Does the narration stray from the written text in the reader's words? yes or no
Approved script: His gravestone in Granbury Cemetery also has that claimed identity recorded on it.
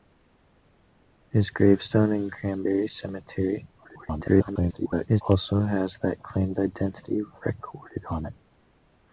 yes